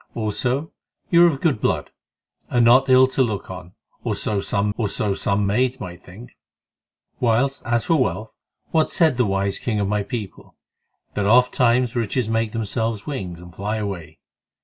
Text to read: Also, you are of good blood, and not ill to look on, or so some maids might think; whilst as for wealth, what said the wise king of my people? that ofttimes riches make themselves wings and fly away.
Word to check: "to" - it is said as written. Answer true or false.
true